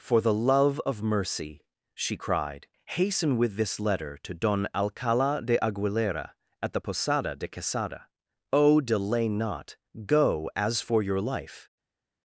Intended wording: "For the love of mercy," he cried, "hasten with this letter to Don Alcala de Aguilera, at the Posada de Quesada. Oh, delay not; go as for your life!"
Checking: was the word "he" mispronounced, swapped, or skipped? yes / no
yes